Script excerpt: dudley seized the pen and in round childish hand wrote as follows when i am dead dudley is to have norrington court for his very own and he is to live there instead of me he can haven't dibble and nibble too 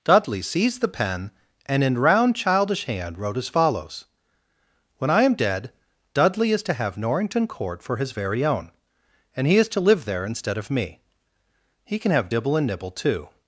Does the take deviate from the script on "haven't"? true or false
true